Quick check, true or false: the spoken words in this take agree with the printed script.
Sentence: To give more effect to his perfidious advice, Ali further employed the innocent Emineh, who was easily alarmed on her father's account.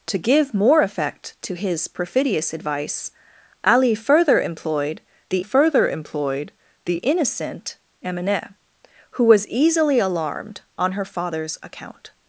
false